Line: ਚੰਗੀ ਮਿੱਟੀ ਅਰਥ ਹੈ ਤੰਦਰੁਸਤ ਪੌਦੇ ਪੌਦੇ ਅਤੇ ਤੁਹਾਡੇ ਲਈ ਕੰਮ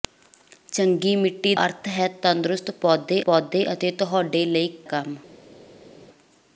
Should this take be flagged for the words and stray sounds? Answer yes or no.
no